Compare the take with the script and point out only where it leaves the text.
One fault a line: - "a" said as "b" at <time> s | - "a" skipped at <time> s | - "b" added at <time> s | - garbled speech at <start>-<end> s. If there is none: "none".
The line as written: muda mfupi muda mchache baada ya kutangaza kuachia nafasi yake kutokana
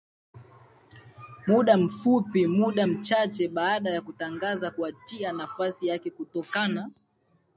none